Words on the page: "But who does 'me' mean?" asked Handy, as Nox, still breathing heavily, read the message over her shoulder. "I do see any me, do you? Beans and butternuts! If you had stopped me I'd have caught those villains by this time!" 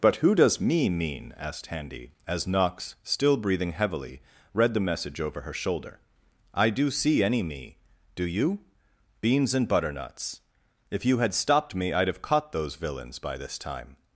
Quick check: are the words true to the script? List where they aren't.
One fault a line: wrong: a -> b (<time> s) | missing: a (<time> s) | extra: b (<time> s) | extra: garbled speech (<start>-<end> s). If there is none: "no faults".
no faults